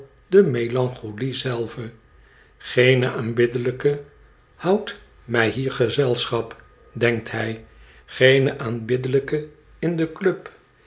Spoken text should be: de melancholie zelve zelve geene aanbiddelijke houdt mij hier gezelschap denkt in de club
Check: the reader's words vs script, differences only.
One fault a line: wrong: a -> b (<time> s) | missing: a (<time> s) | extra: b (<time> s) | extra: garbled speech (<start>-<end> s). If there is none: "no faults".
missing: zelve (1.9 s)
extra: hij geene aanbiddelijke (7.3 s)